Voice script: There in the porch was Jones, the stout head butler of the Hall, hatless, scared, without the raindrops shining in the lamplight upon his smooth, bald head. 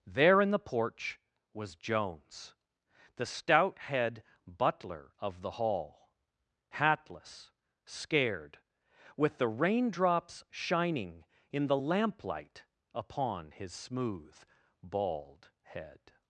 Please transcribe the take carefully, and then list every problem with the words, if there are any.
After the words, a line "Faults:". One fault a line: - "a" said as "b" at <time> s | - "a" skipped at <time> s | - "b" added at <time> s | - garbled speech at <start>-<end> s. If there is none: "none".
There in the porch was Jones, the stout head butler of the Hall, hatless, scared, with the raindrops shining in the lamplight upon his smooth, bald head.
Faults:
- "without" said as "with" at 9.2 s